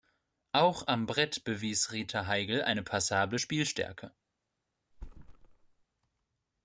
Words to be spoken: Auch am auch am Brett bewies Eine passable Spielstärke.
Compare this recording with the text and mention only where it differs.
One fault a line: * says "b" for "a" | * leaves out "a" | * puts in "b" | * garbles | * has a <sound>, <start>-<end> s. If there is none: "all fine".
* says "Brett bewies Rita Heigl" for "auch am Brett bewies"
* has a thud, 4.9-5.8 s